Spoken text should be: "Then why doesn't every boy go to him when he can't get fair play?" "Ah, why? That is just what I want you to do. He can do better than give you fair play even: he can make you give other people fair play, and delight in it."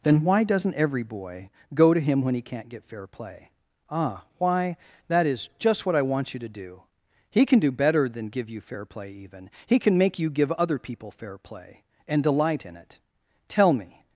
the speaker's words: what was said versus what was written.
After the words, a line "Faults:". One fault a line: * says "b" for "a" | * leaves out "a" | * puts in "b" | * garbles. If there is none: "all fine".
"Then why doesn't every boy go to him when he can't get fair play?" "Ah, why? That is just what I want you to do. He can do better than give you fair play even: he can make you give other people fair play, and delight in it." "Tell me
Faults:
* puts in "Tell me"